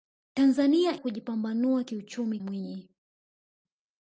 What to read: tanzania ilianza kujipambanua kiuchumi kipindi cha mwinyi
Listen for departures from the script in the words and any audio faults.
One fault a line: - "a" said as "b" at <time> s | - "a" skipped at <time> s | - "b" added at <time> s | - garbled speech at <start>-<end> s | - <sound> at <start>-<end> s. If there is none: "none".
- "ilianza" skipped at 1.0 s
- "kipindi cha" skipped at 2.4 s